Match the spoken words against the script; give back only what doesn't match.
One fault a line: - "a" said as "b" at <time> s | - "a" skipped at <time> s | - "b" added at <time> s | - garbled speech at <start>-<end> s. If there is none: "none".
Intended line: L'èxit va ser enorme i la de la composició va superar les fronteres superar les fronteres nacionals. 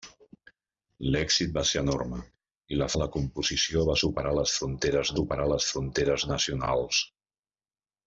none